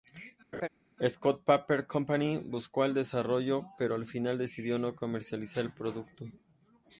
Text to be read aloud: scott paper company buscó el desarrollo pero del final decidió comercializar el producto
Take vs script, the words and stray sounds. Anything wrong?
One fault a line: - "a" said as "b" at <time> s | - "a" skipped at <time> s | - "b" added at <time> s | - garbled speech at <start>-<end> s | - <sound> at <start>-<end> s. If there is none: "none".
- laugh at 0.5-0.7 s
- "del" said as "al" at 3.9 s
- "no" added at 4.8 s